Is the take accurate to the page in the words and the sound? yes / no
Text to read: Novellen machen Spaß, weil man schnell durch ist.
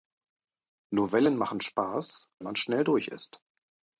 no